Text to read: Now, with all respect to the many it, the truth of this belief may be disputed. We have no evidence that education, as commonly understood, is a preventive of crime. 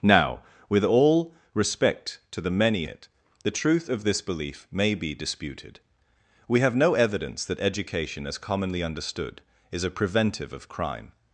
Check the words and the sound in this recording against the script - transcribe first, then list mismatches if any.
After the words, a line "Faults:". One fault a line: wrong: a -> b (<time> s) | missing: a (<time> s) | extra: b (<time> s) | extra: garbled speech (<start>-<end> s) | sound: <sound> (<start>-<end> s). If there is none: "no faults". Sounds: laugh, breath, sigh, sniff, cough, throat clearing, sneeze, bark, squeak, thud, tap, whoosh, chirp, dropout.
Now, with all respect to the many it, the truth of this belief may be disputed. We have no evidence that education, as commonly understood, is a preventive of crime.
Faults:
no faults